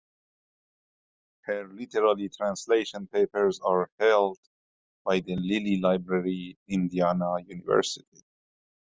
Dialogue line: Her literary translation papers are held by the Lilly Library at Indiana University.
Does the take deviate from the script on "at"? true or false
true